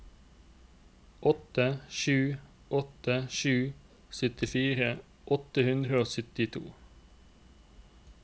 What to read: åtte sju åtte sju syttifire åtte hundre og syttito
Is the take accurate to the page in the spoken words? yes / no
yes